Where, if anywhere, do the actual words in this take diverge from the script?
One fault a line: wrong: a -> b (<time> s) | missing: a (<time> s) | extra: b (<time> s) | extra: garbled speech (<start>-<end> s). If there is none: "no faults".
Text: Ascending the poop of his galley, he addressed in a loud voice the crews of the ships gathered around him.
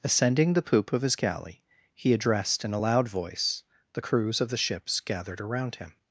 no faults